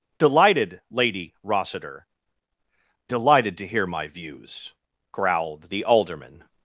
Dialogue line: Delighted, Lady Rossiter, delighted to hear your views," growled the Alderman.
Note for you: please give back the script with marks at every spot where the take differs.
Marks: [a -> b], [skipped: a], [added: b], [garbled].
Delighted, Lady Rossiter, delighted to hear [your -> my] views," growled the Alderman.